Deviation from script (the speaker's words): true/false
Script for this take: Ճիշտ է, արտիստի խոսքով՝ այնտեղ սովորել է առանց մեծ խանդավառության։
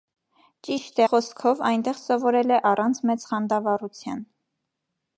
true